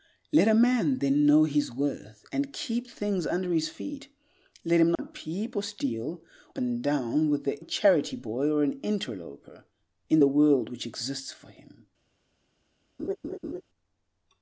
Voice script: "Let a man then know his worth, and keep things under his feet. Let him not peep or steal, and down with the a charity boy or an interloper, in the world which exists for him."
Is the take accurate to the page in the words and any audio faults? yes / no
no